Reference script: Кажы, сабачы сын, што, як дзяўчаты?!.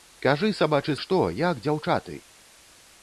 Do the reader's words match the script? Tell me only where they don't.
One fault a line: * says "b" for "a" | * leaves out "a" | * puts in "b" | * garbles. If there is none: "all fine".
* leaves out "сын"